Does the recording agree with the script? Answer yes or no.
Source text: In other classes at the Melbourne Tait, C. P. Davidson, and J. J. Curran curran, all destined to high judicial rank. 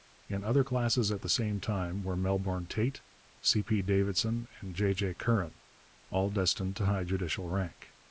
no